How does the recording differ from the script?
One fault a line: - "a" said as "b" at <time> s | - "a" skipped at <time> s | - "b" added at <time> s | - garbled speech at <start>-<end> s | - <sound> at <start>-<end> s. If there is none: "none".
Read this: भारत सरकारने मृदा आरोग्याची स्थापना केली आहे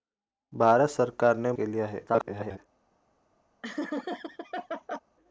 - "मृदा आरोग्याची स्थापना" skipped at 1.5 s
- garbled speech at 2.1-2.6 s
- laugh at 3.6-5.0 s